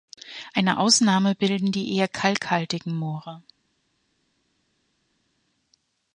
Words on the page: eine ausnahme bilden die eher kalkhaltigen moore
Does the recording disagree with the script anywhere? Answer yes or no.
no